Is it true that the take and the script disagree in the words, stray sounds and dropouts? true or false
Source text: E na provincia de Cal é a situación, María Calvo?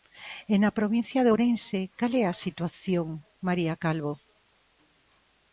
true